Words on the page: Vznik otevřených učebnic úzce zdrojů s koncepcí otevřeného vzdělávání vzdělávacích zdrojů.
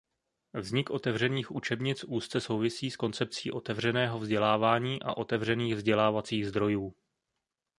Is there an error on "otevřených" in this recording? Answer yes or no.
no